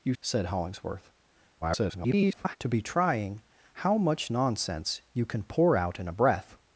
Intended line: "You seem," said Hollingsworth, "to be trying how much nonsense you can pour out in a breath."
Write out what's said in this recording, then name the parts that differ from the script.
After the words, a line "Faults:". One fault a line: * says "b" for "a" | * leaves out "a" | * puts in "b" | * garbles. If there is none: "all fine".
"You," said Hollingsworth, [garbled] "to be trying how much nonsense you can pour out in a breath."
Faults:
* leaves out "seem"
* garbles